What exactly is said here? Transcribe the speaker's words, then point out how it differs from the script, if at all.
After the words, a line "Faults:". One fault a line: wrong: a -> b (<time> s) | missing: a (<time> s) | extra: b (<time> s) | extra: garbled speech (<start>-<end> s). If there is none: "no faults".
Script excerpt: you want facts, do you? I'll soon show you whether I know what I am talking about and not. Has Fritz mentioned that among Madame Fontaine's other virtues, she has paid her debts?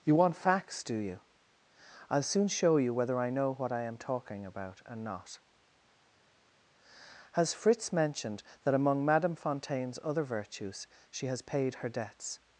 you want facts, do you? I'll soon show you whether I know what I am talking about and not. Has Fritz mentioned that among Madame Fontaine's other virtues, she has paid her debts?
Faults:
no faults